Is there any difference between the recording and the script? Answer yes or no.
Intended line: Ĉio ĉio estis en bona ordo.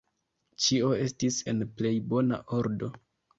yes